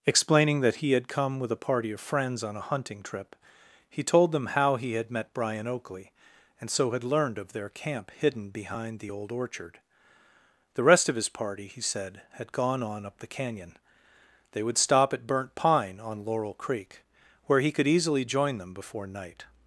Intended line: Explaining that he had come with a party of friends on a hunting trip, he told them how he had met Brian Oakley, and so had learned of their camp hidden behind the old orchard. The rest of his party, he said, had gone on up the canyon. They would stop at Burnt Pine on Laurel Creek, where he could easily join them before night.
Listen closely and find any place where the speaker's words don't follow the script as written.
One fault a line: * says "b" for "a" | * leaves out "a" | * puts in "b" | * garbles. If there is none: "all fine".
all fine